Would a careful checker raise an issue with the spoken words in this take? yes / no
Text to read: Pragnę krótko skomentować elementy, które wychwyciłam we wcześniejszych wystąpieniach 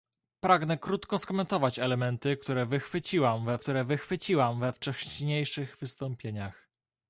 yes